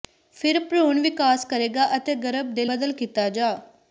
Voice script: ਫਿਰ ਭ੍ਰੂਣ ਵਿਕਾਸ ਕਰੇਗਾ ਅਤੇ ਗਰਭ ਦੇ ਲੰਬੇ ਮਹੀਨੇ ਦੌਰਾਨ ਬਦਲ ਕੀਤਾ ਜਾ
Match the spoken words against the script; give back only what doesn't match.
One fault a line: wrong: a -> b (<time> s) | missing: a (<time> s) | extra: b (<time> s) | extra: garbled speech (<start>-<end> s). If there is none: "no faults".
missing: ਲੰਬੇ ਮਹੀਨੇ ਦੌਰਾਨ (2.7 s)